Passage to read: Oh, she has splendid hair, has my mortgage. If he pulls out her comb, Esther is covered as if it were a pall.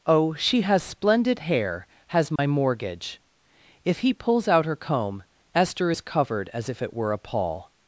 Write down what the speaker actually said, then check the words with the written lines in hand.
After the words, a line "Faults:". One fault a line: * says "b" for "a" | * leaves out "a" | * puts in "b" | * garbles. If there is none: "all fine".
Oh, she has splendid hair, has my mortgage. If he pulls out her comb, Esther is covered as if it were a pall.
Faults:
all fine